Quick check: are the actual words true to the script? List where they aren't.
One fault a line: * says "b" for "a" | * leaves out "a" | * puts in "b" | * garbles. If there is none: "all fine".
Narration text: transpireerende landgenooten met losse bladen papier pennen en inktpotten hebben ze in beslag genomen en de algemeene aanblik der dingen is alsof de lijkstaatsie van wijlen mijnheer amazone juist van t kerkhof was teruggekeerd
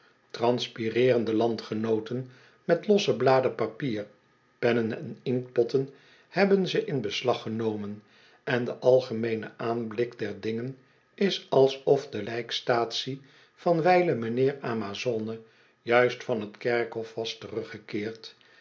all fine